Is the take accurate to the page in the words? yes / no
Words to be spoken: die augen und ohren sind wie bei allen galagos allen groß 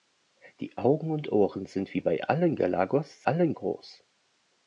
yes